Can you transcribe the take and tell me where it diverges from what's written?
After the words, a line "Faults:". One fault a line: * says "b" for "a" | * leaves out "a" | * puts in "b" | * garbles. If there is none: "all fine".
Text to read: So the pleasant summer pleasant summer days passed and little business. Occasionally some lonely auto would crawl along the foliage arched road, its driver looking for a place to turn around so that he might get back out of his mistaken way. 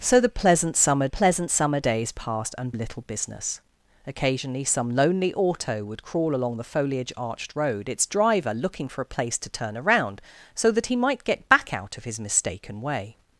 So the pleasant summer pleasant summer days passed and little business. Occasionally some lonely auto would crawl along the foliage arched road, its driver looking for a place to turn around so that he might get back out of his mistaken way.
Faults:
all fine